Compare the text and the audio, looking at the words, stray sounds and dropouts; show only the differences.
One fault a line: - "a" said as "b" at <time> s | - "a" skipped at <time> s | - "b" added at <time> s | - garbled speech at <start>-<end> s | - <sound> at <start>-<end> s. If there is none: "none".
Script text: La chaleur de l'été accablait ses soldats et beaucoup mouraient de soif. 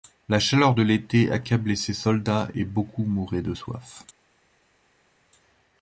none